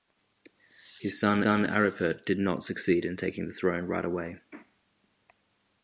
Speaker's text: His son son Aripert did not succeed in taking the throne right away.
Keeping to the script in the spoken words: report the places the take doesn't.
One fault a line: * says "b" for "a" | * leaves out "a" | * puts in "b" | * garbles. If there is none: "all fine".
all fine